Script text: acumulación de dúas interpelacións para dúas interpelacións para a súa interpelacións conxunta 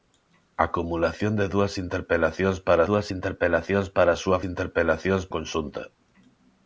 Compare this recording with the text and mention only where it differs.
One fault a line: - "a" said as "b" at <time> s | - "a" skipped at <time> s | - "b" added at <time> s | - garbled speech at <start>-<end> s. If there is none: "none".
none